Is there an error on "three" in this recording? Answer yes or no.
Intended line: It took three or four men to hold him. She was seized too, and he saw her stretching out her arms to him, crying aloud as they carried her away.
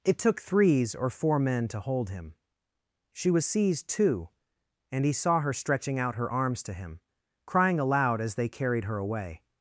yes